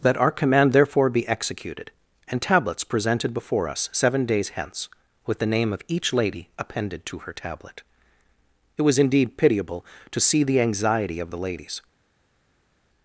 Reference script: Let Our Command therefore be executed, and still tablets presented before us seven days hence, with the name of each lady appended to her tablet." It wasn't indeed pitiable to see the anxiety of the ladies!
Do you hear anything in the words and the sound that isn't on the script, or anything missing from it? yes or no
yes